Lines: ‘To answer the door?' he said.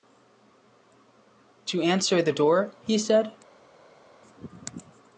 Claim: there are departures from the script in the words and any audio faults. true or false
false